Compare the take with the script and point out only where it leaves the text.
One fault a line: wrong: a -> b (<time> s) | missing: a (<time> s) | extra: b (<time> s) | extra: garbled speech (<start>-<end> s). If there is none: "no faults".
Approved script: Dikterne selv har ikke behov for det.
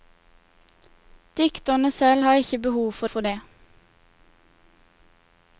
extra: for (3.1 s)